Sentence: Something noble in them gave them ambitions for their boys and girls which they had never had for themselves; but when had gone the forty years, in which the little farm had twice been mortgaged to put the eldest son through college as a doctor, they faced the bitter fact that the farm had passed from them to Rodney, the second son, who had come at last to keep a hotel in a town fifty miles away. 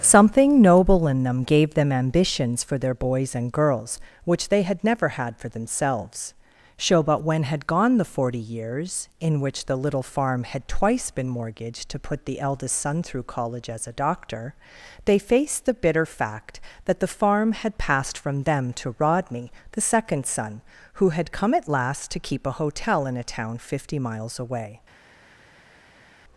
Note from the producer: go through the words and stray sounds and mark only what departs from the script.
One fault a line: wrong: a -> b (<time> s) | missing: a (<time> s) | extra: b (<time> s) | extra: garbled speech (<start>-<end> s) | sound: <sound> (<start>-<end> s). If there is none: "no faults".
extra: so (6.8 s)